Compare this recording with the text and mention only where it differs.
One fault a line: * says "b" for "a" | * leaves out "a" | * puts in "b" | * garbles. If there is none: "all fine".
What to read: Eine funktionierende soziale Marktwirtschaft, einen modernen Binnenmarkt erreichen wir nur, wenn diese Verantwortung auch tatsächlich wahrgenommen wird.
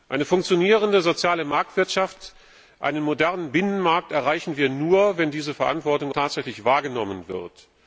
* leaves out "auch"